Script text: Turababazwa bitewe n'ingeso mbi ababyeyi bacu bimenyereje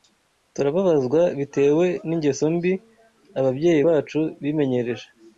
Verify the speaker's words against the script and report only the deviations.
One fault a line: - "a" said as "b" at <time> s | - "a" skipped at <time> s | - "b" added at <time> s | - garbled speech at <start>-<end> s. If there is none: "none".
none